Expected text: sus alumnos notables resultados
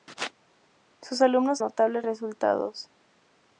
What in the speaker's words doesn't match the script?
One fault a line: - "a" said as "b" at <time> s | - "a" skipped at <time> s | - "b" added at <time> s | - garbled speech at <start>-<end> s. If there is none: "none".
none